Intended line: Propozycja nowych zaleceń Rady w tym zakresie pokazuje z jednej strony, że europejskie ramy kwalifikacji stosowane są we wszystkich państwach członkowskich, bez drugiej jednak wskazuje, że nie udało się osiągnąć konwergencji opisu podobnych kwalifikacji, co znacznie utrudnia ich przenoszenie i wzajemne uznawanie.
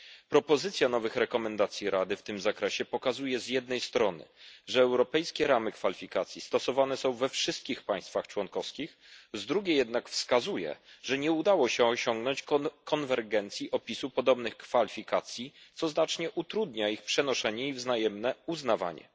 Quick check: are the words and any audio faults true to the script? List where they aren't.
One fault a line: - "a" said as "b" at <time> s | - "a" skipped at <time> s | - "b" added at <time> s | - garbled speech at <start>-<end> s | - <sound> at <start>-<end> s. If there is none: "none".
- "bez" said as "z" at 9.3 s